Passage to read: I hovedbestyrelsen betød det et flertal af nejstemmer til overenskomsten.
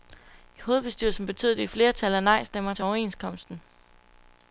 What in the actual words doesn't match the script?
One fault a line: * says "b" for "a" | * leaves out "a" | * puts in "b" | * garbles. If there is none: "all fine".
all fine